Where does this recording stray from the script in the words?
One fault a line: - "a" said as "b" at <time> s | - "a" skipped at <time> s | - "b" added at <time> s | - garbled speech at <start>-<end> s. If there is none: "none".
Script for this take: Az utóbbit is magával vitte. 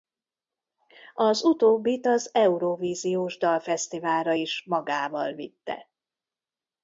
- "az Eurovíziós Dalfesztiválra" added at 2.1 s